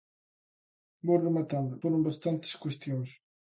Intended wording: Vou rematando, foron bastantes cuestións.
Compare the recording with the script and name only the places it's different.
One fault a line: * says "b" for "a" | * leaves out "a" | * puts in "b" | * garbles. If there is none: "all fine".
all fine